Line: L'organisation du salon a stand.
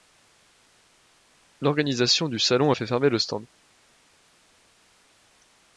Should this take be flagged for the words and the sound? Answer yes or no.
yes